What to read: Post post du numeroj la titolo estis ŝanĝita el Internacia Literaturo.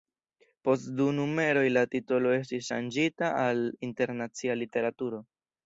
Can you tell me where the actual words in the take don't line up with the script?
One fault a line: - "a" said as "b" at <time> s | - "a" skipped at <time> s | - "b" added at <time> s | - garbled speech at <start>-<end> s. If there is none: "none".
- "post" skipped at 0.9 s
- "el" said as "al" at 3.4 s